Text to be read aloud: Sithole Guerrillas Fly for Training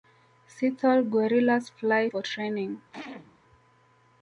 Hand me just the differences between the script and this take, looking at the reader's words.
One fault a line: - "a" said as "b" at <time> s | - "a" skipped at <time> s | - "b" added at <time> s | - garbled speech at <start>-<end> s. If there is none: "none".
none